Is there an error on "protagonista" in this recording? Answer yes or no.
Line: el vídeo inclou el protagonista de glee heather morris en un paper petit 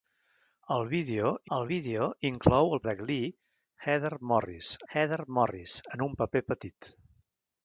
yes